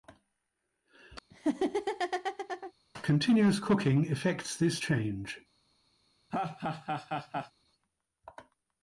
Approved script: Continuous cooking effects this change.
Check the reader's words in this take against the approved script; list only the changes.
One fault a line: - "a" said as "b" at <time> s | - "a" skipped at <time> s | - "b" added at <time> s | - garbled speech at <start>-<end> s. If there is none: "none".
none